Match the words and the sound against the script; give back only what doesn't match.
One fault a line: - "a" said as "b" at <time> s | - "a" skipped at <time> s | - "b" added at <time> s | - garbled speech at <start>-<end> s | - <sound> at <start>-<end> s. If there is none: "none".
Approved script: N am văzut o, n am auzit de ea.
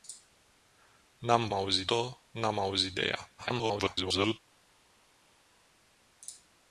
- "văzut" said as "auzit" at 1.5 s
- garbled speech at 3.4-4.4 s